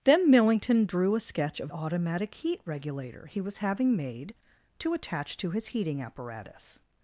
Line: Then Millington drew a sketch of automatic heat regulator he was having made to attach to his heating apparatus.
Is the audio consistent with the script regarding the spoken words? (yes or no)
yes